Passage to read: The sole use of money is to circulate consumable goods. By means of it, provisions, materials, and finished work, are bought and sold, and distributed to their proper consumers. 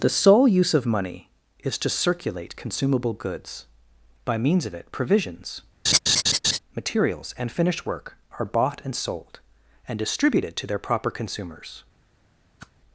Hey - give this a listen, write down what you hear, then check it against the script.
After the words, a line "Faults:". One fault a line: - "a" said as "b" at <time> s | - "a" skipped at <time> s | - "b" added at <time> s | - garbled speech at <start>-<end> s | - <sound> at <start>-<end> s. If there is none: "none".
The sole use of money is to circulate consumable goods. By means of it, provisions, materials, and finished work, are bought and sold, and distributed to their proper consumers.
Faults:
- laugh at 5.9-6.6 s
- whoosh at 12.6-12.7 s